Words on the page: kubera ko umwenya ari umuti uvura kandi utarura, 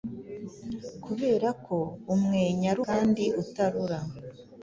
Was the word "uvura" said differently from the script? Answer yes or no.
yes